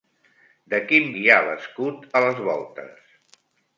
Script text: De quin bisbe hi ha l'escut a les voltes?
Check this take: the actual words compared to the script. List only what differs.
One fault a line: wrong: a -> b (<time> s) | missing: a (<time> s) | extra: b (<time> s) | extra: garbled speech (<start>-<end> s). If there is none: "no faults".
missing: bisbe (1.1 s)